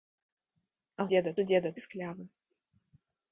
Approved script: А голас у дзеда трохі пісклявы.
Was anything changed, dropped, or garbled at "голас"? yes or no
yes